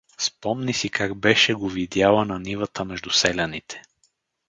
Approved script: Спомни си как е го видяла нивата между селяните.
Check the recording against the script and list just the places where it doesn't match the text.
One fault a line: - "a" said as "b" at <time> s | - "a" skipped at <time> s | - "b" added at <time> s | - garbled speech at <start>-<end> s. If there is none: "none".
- "е" said as "беше" at 1.1 s
- "на" added at 2.2 s